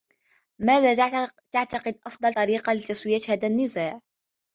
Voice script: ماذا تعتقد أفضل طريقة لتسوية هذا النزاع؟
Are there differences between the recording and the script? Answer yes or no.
no